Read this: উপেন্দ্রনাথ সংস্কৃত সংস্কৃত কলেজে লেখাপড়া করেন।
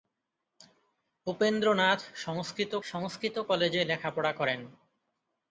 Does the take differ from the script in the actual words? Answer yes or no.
no